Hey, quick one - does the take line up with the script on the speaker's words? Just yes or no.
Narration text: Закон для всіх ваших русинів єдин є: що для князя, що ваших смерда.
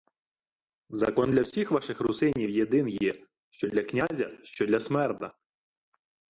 no